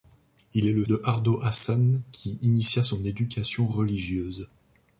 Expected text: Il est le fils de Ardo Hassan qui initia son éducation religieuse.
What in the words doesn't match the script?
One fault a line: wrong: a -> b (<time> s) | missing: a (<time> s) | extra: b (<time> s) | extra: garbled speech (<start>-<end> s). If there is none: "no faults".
missing: fils (0.8 s)